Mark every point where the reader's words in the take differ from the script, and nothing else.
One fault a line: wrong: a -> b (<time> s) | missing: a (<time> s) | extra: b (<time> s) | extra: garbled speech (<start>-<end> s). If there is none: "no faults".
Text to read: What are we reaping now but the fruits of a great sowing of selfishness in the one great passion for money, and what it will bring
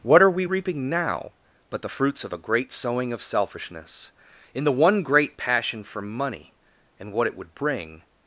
wrong: will -> would (7.4 s)